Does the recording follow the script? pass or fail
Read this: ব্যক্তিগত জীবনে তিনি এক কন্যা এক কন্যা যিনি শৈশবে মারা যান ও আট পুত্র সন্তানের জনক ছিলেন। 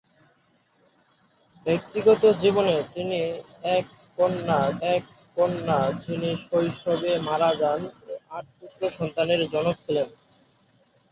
pass